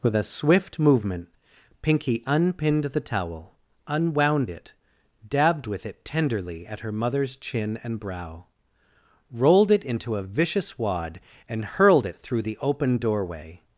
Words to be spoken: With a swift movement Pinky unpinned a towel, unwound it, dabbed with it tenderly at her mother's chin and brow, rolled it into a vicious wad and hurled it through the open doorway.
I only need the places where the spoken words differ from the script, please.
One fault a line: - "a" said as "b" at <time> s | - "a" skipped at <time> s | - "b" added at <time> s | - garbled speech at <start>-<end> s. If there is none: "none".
- "a" said as "the" at 2.9 s